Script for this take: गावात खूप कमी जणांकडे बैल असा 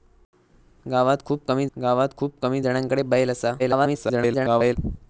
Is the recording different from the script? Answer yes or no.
yes